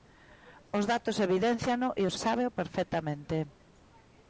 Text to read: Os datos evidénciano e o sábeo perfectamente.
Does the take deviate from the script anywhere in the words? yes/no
no